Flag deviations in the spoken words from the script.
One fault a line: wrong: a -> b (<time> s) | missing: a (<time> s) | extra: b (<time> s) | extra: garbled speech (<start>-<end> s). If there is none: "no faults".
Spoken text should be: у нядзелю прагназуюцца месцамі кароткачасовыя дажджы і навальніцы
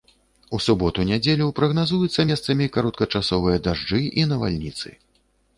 extra: суботу (0.7 s)